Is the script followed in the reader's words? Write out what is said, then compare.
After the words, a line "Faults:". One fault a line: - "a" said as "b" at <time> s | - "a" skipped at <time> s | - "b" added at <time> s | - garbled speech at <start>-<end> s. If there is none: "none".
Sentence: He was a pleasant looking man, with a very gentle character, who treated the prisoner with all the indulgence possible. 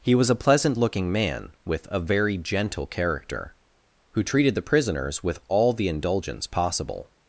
He was a pleasant looking man, with a very gentle character, who treated the prisoners with all the indulgence possible.
Faults:
- "prisoner" said as "prisoners" at 4.6 s